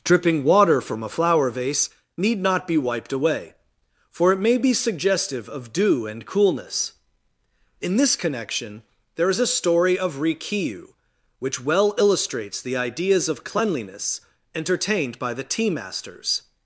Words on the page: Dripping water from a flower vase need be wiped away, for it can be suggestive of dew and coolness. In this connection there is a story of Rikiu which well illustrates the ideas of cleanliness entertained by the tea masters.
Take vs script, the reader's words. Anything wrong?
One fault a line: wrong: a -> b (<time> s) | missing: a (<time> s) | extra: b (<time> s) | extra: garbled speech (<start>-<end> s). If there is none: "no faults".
extra: not (2.4 s)
wrong: can -> may (4.4 s)